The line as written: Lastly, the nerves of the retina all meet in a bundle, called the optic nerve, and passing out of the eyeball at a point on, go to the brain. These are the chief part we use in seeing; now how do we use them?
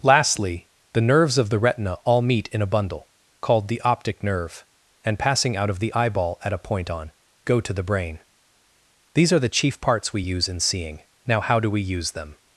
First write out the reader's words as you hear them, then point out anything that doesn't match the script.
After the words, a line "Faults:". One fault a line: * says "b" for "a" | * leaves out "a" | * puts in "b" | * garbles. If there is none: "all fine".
Lastly, the nerves of the retina all meet in a bundle, called the optic nerve, and passing out of the eyeball at a point on, go to the brain. These are the chief parts we use in seeing; now how do we use them?
Faults:
* says "parts" for "part"